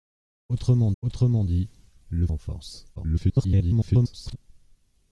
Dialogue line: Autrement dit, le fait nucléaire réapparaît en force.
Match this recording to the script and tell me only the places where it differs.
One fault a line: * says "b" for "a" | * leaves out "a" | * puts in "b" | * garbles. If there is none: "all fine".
* puts in "autrement"
* leaves out "fait nucléaire réapparaît"
* garbles